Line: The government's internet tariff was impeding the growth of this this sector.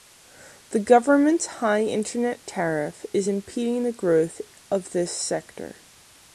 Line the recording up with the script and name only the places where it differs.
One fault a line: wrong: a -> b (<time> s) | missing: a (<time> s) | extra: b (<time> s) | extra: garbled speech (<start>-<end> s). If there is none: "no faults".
extra: high (1.4 s)
wrong: was -> is (3.1 s)
missing: this (5.1 s)